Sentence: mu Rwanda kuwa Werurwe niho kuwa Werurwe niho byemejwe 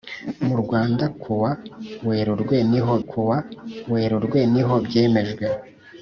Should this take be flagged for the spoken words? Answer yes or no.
no